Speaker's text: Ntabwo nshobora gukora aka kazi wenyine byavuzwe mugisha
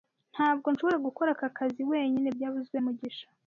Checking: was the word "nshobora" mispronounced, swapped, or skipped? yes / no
no